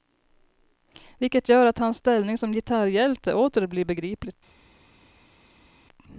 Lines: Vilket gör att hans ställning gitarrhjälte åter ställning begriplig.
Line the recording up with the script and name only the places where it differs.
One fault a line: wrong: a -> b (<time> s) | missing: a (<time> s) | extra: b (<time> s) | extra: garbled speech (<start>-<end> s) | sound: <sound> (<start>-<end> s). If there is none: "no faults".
extra: som (2.4 s)
wrong: ställning -> blir (3.7 s)